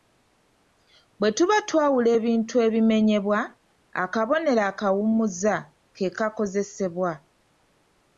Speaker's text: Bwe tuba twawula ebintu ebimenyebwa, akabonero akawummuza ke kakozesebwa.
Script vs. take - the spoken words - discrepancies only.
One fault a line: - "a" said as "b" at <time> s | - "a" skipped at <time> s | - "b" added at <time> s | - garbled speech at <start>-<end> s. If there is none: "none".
none